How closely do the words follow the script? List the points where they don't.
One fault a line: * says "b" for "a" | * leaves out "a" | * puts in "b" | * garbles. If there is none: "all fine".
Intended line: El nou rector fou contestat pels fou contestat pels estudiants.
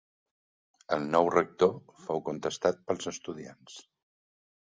* leaves out "fou contestat pels"